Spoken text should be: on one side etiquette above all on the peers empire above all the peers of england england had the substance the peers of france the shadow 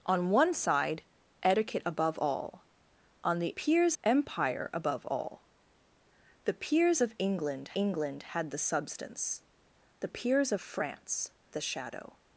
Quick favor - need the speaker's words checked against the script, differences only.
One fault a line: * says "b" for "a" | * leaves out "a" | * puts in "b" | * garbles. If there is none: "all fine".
all fine